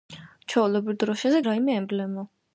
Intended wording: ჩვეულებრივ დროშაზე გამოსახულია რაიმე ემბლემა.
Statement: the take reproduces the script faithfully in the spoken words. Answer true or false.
false